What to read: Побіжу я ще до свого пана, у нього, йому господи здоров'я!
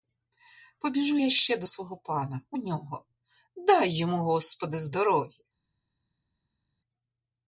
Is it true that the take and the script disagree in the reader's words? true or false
true